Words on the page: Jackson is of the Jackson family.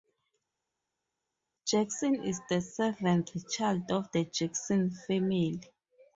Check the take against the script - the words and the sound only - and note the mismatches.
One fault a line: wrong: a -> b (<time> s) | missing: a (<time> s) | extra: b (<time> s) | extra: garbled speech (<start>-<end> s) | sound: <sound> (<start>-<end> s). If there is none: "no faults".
extra: the seventh child (2.5 s)